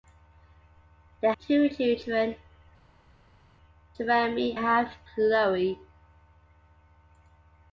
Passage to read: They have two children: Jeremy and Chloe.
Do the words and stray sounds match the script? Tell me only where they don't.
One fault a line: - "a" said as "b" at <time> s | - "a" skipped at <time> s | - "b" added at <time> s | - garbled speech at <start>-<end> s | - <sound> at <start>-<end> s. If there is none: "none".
- "have" skipped at 1.3 s
- "and" said as "have" at 4.5 s